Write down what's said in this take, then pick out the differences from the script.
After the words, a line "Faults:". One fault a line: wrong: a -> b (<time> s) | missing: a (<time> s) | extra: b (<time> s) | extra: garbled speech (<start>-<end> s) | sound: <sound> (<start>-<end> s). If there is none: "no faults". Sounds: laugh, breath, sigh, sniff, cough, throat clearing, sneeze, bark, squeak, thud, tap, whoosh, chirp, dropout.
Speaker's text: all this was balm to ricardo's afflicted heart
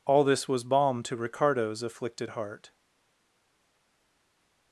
all this was balm to ricardo's afflicted heart
Faults:
no faults